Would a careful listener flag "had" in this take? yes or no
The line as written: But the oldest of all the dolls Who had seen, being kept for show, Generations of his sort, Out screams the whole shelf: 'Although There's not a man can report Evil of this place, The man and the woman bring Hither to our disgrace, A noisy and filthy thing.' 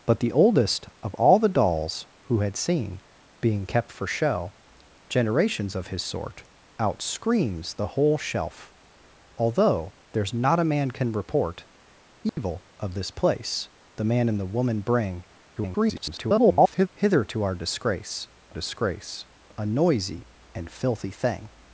no